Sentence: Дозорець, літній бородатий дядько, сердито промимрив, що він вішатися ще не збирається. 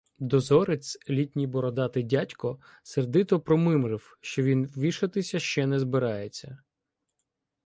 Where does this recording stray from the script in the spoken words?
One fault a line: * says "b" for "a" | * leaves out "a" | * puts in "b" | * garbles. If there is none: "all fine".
all fine